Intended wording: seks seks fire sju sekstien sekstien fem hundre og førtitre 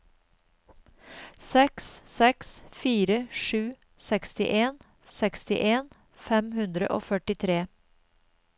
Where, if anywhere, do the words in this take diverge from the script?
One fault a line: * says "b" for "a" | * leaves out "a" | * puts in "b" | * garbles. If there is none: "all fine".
all fine